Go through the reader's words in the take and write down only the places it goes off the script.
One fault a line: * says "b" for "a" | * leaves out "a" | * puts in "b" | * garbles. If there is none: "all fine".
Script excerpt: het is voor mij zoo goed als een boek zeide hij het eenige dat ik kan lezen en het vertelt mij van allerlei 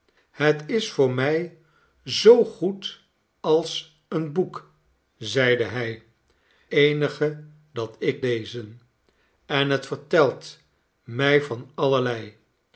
* leaves out "het"
* leaves out "kan"